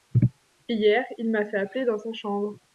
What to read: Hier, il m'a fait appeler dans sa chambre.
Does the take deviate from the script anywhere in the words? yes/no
no